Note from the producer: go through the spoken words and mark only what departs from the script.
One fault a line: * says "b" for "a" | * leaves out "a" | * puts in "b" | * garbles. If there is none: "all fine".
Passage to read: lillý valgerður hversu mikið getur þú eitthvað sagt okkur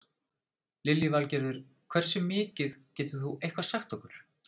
all fine